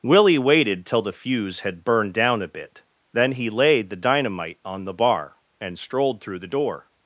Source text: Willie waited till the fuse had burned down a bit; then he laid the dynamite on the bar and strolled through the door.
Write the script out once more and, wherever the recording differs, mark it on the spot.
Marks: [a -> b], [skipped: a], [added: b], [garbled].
Willie waited till the fuse had burned down a bit; then he laid the dynamite on the bar and strolled through the door.